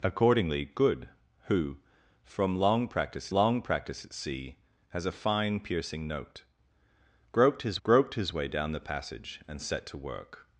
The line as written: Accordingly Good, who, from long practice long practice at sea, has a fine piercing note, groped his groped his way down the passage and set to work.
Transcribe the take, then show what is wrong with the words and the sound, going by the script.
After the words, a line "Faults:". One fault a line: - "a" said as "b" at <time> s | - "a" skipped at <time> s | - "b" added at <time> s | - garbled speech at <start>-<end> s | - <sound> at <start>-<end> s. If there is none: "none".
Accordingly Good, who, from long practice long practice at sea, has a fine piercing note, groped his groped his way down the passage and set to work.
Faults:
none